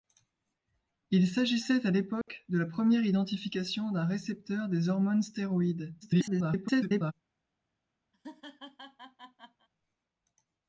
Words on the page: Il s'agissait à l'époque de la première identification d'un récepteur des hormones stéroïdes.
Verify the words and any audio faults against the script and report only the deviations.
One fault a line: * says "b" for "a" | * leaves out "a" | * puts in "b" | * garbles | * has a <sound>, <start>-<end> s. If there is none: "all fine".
* has a dropout, 2.2-2.3 s
* garbles
* has a laugh, 8.1-9.7 s